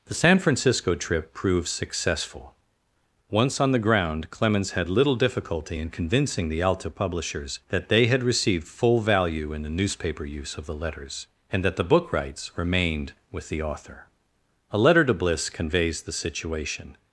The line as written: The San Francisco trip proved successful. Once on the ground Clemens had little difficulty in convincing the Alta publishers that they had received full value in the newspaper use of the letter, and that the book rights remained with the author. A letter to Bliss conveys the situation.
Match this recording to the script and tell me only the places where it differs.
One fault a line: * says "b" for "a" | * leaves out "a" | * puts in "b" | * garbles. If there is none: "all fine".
* says "letters" for "letter"